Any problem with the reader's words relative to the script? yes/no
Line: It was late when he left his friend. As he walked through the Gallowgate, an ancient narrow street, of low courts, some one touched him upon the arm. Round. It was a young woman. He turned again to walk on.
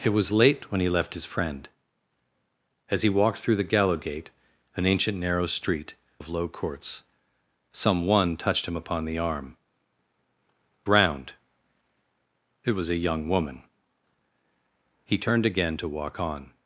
no